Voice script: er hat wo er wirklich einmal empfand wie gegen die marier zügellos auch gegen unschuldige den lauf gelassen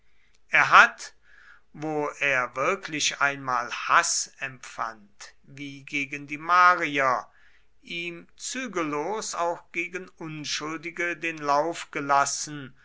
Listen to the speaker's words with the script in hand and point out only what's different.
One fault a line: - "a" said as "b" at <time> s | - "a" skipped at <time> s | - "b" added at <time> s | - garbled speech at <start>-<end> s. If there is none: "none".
- "haß" added at 3.7 s
- "ihm" added at 7.8 s